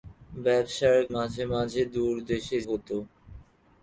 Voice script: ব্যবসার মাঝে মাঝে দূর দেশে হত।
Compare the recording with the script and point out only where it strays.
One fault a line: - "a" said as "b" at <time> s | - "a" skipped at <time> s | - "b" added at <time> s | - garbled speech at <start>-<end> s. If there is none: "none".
none